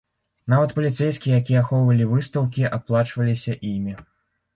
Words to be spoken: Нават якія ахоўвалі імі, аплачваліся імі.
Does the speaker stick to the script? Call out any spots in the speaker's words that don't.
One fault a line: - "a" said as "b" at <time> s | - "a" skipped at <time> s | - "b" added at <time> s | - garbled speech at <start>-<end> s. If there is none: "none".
- "паліцэйскія" added at 0.7 s
- "імі" said as "выстаўкі" at 2.1 s